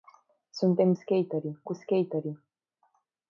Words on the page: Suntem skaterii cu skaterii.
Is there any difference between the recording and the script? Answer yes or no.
no